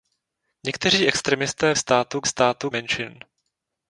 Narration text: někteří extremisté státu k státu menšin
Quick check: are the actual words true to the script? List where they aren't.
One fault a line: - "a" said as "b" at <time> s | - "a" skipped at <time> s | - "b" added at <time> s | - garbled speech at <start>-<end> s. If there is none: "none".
none